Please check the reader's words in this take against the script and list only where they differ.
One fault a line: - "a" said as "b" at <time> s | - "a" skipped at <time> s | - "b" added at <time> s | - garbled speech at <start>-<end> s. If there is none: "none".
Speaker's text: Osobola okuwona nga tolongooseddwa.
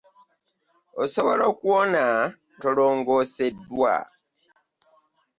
- "nga" skipped at 2.0 s